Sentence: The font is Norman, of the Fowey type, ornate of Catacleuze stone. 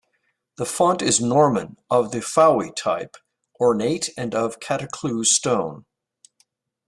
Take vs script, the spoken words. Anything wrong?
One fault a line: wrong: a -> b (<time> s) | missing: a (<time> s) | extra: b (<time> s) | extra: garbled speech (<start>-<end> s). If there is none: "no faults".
extra: and (4.2 s)